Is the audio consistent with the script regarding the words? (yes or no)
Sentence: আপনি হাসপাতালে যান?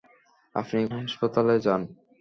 yes